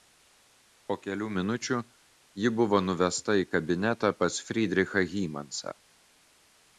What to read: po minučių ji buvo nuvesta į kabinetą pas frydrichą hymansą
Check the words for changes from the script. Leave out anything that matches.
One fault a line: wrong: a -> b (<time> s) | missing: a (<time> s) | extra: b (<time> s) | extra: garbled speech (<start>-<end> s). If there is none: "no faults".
extra: kelių (1.0 s)